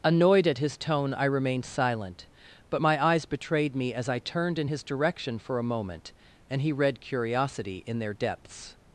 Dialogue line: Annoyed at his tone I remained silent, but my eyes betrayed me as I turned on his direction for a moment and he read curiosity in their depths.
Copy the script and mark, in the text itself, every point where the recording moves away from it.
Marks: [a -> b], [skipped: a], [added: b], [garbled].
Annoyed at his tone I remained silent, but my eyes betrayed me as I turned [on -> in] his direction for a moment and he read curiosity in their depths.